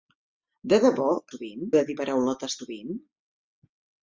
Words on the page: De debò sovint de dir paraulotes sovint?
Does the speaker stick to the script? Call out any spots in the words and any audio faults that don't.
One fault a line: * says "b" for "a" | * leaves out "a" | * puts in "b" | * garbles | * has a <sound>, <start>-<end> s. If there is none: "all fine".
all fine